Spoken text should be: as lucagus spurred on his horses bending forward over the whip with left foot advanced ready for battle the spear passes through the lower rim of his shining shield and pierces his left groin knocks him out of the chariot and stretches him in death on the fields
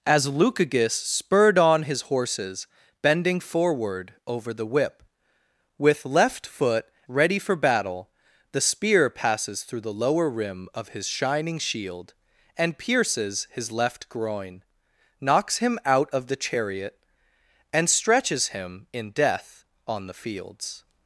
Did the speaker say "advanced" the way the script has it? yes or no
no